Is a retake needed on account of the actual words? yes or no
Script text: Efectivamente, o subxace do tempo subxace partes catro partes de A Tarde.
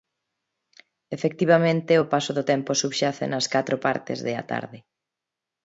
yes